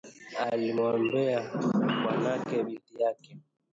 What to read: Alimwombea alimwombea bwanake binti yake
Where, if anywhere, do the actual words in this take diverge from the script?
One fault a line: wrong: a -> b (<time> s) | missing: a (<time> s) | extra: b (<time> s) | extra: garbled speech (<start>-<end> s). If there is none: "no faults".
missing: alimwombea (1.4 s)